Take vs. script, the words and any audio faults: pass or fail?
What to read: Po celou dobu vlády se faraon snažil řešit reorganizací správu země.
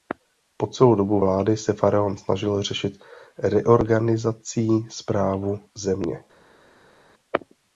pass